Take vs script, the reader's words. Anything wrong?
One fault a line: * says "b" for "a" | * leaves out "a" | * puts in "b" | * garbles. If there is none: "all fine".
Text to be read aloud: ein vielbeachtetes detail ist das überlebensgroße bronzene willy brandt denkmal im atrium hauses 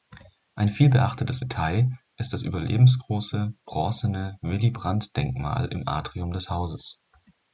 * puts in "des"